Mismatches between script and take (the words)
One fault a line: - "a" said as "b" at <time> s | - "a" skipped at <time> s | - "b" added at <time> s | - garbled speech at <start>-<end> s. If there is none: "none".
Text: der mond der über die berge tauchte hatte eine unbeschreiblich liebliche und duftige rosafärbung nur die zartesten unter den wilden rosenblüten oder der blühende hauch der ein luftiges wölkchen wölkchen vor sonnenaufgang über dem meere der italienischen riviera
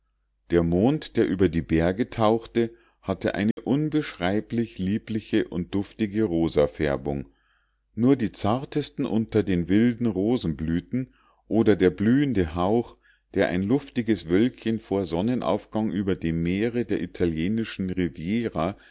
- "wölkchen" skipped at 14.8 s